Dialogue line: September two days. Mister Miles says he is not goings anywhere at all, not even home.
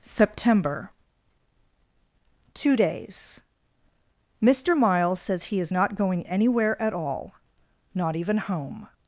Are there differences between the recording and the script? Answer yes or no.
yes